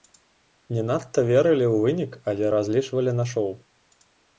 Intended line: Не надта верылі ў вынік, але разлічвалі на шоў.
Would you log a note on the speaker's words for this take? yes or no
no